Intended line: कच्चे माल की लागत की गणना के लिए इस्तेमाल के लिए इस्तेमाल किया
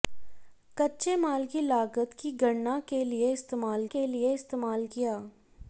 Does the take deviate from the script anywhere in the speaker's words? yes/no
no